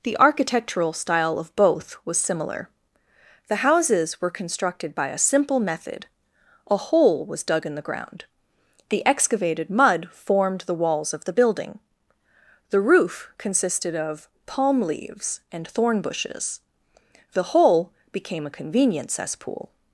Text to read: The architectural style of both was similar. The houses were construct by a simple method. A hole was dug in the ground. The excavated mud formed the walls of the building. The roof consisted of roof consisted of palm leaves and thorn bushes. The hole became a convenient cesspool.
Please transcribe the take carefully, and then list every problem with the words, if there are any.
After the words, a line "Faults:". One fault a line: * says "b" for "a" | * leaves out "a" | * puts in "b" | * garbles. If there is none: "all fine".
The architectural style of both was similar. The houses were constructed by a simple method. A hole was dug in the ground. The excavated mud formed the walls of the building. The roof consisted of palm leaves and thorn bushes. The hole became a convenient cesspool.
Faults:
* says "constructed" for "construct"
* leaves out "roof consisted of"